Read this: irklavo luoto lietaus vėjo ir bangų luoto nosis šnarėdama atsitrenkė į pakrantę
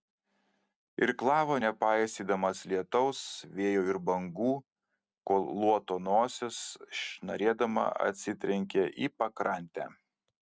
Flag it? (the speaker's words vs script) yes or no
yes